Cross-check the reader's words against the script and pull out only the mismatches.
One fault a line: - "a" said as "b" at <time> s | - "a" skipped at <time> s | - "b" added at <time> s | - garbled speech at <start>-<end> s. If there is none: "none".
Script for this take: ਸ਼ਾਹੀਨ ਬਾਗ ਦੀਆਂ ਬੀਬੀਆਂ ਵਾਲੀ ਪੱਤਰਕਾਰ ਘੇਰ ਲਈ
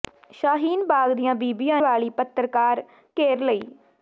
none